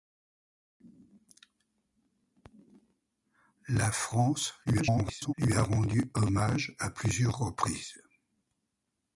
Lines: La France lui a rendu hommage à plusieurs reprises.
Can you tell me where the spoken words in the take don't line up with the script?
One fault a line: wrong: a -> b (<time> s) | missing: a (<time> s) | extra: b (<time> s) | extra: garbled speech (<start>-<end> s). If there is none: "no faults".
extra: garbled speech (4.7-5.3 s)